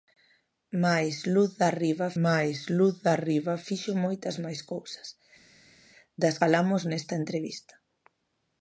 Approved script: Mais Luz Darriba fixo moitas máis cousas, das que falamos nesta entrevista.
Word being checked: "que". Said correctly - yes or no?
no